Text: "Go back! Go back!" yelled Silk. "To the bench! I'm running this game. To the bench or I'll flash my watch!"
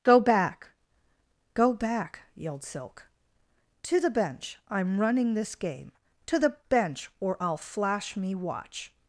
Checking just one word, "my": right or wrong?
wrong